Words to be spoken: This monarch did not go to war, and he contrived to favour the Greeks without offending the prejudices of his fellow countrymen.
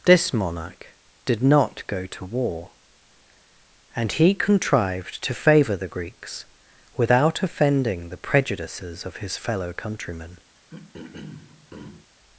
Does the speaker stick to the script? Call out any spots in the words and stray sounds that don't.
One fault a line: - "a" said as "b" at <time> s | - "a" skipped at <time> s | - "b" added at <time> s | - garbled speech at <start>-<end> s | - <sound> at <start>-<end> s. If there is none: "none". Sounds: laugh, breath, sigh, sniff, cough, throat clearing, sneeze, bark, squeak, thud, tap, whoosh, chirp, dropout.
- throat clearing at 10.6-12.1 s